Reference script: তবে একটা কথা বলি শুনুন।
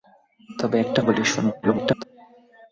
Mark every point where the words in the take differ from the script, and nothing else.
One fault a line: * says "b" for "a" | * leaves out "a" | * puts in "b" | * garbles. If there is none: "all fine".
* leaves out "কথা"
* garbles